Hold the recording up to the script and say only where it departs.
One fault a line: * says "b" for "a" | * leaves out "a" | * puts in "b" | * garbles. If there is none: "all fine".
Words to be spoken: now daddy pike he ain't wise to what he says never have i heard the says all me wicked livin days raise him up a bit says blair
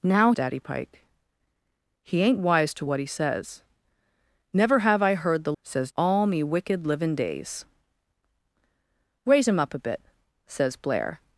all fine